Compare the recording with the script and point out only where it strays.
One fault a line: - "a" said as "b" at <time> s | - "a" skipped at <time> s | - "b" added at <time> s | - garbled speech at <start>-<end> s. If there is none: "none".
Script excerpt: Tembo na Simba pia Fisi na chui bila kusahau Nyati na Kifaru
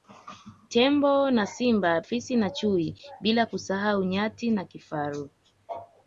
- "pia" skipped at 2.0 s